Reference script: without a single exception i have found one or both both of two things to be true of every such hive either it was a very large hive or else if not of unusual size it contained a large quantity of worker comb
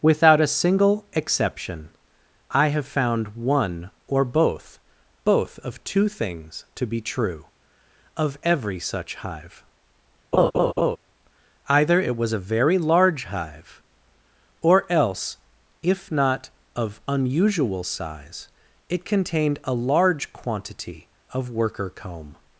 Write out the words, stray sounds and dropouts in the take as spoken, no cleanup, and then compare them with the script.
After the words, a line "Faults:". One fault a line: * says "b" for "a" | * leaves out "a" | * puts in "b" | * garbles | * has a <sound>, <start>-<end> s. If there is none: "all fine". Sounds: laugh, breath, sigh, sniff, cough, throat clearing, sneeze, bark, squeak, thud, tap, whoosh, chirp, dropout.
without a single exception i have found one or both both of two things to be true of every such hive either it was a very large hive or else if not of unusual size it contained a large quantity of worker comb
Faults:
* has a laugh, 10.3-11.0 s